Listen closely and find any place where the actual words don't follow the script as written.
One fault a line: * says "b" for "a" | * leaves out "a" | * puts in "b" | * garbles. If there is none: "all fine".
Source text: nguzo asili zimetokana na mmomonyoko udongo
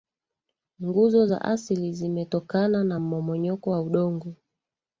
* puts in "za"
* puts in "wa"